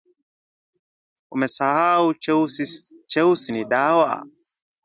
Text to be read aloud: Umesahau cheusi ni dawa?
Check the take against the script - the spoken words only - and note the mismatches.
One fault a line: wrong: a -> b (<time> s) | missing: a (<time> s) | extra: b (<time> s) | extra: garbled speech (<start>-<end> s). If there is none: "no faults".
no faults